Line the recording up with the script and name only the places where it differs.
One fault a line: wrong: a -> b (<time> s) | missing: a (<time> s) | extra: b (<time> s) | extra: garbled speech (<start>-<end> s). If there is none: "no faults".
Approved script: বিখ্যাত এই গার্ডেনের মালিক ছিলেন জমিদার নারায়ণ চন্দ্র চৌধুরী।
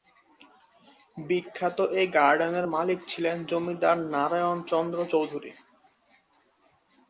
no faults